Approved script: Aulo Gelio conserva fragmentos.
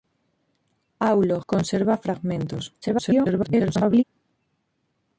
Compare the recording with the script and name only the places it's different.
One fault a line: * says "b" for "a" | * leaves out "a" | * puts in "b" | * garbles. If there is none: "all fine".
* leaves out "Gelio"
* garbles